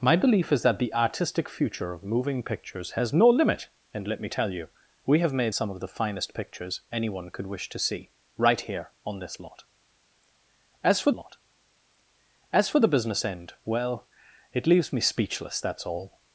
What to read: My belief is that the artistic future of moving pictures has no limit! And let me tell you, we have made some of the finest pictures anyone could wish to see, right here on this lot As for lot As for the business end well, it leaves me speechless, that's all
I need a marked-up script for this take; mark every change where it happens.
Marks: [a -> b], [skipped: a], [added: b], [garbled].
My belief is that the artistic future of moving pictures has no limit! And let me tell you, we have made some of the finest pictures anyone could wish to see, right here on this lot As for lot As for the business end well, it leaves me speechless, that's all